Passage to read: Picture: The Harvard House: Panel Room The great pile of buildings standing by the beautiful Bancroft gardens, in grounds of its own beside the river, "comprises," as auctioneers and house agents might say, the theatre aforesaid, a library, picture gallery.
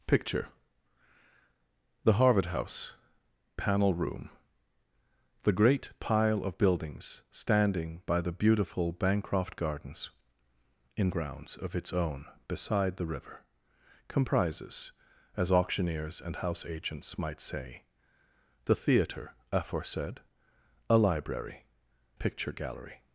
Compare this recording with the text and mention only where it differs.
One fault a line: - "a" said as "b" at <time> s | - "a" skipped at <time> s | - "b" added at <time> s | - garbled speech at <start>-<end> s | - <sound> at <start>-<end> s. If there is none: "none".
none